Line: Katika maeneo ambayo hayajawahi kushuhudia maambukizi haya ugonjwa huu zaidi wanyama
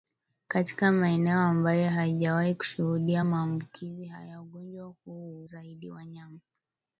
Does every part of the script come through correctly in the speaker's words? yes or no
yes